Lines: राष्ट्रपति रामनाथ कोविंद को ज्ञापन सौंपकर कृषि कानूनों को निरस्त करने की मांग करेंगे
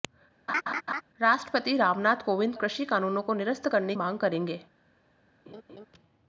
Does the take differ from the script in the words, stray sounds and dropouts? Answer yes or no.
yes